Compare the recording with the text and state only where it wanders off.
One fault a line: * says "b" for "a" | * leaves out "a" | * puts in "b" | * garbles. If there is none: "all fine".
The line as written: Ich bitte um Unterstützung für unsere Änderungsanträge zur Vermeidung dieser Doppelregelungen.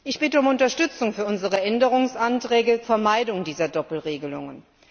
* leaves out "zur"